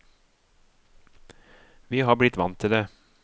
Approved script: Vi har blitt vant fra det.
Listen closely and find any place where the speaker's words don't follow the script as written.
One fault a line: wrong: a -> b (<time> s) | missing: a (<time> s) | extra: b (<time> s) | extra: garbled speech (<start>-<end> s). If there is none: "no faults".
wrong: fra -> til (2.6 s)